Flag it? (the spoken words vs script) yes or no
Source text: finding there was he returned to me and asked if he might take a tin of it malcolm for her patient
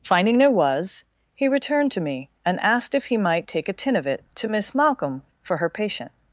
yes